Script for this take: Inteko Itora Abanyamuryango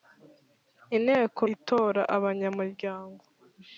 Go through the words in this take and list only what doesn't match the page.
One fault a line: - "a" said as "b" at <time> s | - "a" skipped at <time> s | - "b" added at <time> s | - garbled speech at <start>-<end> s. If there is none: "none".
none